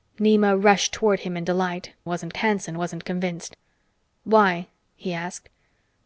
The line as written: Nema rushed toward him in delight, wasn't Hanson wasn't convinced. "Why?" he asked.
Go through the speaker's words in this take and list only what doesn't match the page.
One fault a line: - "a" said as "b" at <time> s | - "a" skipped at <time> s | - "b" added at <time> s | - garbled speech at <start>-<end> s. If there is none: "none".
none